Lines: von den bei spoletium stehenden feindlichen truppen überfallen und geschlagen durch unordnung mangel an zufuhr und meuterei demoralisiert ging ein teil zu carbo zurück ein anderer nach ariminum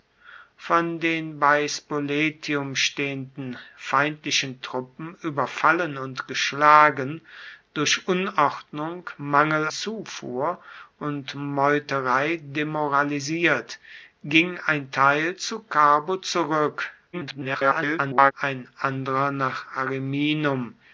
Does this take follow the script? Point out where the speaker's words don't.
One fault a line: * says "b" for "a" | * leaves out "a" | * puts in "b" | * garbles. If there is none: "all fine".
* leaves out "an"
* garbles